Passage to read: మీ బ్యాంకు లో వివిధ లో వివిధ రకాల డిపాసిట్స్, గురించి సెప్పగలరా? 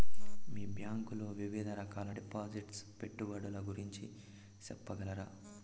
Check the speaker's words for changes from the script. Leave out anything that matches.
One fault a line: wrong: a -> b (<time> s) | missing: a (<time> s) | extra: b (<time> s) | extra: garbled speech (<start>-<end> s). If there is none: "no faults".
missing: లో వివిధ (1.7 s)
extra: పెట్టుబడుల (3.0 s)